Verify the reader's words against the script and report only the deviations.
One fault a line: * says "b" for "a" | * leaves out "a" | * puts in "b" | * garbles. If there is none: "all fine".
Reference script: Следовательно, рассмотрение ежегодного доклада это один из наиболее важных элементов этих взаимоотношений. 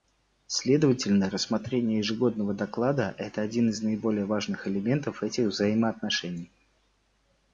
all fine